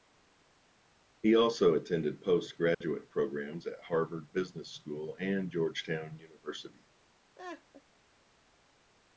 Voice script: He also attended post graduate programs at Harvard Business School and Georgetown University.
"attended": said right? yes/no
yes